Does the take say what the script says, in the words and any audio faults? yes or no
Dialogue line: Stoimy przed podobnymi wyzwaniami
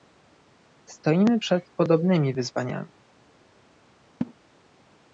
no